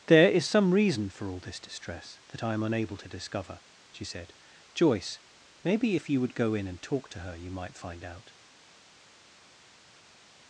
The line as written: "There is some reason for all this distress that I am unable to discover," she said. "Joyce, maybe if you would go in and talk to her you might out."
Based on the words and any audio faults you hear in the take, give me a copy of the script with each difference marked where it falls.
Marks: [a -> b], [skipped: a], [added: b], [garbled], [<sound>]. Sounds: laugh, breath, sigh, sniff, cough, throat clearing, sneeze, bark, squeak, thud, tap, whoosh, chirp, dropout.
"There is some reason for all this distress that I am unable to discover," she said. "Joyce, maybe if you would go in and talk to her you might [added: find] out."